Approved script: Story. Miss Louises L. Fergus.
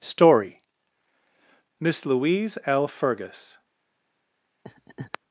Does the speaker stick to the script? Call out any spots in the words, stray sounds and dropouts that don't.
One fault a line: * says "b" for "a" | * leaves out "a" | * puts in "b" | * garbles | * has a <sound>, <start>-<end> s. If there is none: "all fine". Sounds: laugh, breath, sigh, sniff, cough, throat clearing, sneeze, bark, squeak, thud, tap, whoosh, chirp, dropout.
* says "Louise" for "Louises"
* has a laugh, 4.6-5.2 s